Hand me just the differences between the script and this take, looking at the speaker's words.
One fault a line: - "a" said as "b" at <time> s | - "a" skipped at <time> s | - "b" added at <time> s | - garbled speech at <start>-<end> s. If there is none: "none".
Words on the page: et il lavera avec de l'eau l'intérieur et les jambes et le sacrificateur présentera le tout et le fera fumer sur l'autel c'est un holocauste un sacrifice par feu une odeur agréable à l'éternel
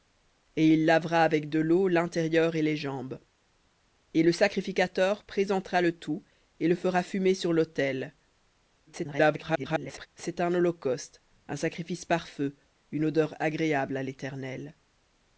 - garbled speech at 8.9-10.1 s